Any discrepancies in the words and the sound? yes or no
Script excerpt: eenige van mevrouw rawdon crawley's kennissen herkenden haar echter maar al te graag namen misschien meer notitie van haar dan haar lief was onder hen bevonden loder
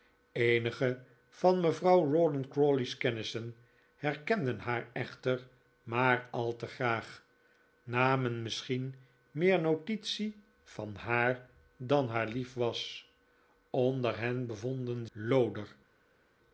no